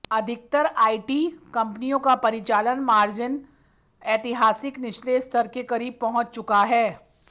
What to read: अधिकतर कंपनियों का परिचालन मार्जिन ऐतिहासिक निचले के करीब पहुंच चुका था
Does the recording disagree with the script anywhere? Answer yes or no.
yes